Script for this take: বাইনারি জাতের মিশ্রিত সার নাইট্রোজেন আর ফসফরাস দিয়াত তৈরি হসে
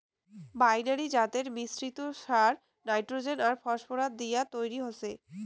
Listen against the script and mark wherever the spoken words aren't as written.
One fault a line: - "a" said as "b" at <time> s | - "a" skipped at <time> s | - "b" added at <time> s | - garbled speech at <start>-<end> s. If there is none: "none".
none